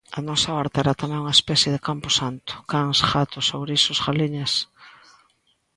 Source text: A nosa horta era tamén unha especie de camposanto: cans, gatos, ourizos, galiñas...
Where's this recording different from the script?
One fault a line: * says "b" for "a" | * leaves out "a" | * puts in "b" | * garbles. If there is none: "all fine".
all fine